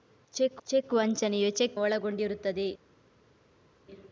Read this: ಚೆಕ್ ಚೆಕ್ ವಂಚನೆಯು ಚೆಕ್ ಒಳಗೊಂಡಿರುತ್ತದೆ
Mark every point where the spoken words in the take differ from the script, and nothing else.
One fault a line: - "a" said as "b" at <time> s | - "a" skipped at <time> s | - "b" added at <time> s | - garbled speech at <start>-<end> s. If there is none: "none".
none